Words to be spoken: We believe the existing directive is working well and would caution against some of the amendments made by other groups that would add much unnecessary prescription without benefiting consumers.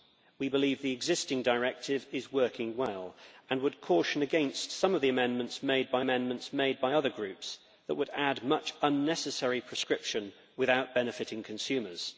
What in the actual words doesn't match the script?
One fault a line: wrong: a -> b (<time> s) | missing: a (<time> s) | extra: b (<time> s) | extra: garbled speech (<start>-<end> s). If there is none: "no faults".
extra: amendments made by (6.0 s)